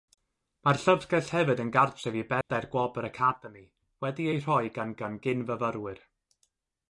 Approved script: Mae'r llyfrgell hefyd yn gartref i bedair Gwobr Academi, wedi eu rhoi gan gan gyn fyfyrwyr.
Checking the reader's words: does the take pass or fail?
pass